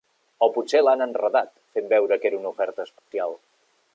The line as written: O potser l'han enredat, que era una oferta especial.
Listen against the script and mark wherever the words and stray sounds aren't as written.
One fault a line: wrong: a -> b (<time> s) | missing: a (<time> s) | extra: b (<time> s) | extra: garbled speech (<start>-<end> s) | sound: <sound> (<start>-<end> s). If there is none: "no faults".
extra: fent veure (1.8 s)
sound: dropout (3.0-3.1 s)